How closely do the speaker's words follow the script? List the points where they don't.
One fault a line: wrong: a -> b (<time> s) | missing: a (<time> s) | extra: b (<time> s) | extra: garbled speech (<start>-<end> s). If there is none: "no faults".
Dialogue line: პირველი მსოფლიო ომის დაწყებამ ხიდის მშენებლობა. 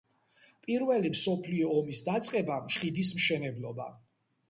no faults